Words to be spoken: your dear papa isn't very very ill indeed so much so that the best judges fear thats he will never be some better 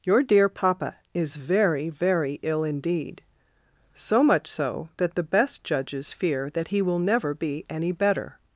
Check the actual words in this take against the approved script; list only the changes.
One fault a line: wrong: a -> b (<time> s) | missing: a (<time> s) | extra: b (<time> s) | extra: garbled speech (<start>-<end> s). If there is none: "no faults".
wrong: isn't -> is (1.1 s)
wrong: thats -> that (6.5 s)
wrong: some -> any (7.7 s)